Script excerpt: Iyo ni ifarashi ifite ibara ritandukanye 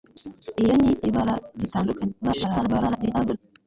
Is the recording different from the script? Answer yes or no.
yes